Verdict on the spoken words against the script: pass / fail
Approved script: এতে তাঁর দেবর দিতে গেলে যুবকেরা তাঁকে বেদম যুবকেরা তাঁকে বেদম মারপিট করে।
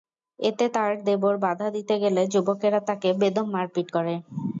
fail